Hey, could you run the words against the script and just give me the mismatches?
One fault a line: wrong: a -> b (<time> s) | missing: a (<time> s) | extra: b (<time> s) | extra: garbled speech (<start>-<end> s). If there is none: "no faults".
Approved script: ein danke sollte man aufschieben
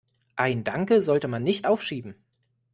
extra: nicht (1.4 s)